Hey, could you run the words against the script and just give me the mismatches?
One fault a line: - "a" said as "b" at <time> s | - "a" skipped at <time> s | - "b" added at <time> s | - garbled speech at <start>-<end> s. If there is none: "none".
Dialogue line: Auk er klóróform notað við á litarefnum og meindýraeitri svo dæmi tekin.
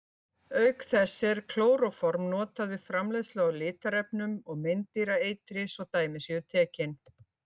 - "þess" added at 0.9 s
- "framleiðslu" added at 2.9 s
- "séu" added at 6.3 s